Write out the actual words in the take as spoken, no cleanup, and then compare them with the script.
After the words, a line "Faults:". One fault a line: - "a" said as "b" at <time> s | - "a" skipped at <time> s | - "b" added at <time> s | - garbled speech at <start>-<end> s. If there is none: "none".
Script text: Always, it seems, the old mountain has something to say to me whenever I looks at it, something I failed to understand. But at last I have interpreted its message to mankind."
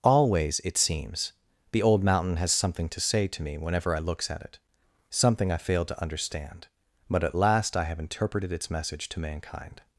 Always, it seems, the old mountain has something to say to me whenever I looks at it, something I failed to understand. But at last I have interpreted its message to mankind."
Faults:
none